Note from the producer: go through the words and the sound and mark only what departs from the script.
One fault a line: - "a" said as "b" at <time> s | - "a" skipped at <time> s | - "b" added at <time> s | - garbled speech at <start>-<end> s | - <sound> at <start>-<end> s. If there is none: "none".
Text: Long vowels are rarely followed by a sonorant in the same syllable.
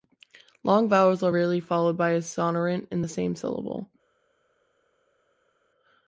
none